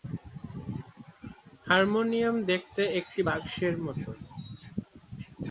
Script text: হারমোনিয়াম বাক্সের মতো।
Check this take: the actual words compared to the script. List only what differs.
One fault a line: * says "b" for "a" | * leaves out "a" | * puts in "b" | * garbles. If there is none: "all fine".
* puts in "দেখতে একটি"